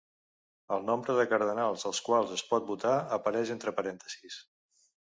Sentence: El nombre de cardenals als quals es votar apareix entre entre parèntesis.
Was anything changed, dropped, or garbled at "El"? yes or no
no